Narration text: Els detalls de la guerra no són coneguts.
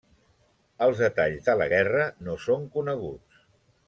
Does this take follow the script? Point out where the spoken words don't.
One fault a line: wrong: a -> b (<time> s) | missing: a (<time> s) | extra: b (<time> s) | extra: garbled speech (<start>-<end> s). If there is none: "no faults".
no faults